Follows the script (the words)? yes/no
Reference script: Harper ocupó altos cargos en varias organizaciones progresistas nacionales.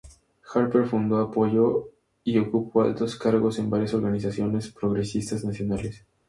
no